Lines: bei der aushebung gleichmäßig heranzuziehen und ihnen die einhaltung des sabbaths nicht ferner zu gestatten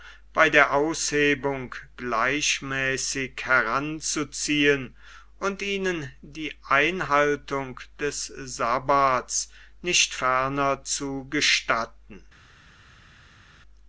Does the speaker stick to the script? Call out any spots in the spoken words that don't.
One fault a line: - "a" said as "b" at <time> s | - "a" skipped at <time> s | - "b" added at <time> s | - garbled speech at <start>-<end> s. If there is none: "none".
none